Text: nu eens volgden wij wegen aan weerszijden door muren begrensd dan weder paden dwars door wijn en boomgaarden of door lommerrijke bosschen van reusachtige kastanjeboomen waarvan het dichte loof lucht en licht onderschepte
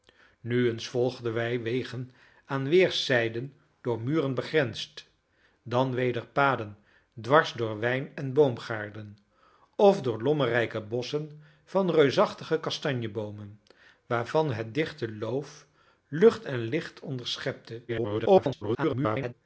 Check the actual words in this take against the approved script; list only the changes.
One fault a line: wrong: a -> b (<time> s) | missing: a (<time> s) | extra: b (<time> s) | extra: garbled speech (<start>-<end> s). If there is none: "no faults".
extra: garbled speech (17.9-19.3 s)